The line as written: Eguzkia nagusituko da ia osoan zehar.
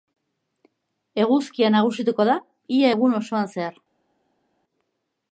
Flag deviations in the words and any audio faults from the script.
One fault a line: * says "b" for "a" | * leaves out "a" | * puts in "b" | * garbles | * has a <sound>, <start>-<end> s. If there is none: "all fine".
* puts in "egun"